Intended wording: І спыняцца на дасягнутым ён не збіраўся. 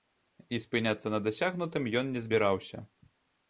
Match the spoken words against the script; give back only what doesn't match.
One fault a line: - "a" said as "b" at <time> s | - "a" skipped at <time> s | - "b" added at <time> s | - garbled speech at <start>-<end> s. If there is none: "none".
none